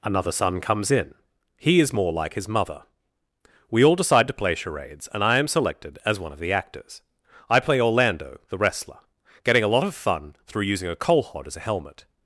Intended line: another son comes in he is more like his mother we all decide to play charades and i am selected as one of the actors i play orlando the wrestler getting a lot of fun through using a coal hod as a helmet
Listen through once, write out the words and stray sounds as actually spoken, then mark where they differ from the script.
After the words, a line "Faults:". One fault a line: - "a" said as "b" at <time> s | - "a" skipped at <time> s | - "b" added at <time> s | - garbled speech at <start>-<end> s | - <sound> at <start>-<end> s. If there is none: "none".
another son comes in he is more like his mother we all decide to play charades and i am selected as one of the actors i play orlando the wrestler getting a lot of fun through using a coal hod as a helmet
Faults:
none